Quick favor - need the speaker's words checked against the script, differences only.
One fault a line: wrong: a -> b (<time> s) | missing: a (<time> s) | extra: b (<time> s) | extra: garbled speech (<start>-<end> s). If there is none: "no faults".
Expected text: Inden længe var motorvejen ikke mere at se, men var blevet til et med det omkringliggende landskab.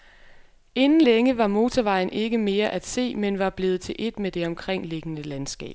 no faults